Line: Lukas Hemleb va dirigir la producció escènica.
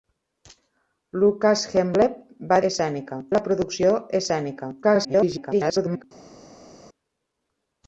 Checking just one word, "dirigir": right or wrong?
wrong